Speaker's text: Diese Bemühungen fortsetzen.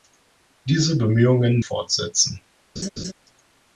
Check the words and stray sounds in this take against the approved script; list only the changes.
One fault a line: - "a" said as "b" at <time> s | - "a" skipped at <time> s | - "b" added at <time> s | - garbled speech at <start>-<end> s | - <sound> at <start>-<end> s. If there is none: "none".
- laugh at 2.8-3.1 s